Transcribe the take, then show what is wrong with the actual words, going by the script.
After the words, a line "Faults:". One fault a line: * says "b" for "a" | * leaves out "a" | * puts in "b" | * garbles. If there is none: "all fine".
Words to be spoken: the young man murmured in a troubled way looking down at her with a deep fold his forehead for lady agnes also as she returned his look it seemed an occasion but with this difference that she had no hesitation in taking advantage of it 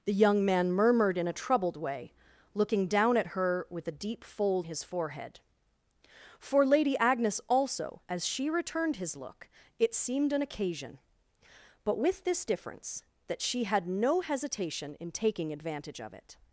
the young man murmured in a troubled way looking down at her with a deep fold his forehead for lady agnes also as she returned his look it seemed an occasion but with this difference that she had no hesitation in taking advantage of it
Faults:
all fine